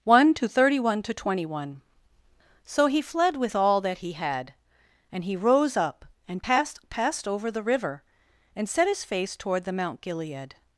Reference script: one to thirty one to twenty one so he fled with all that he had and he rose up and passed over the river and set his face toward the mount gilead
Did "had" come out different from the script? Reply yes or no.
no